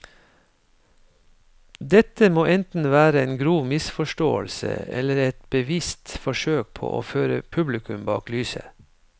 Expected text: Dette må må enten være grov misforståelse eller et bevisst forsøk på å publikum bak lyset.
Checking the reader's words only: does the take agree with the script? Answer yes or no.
no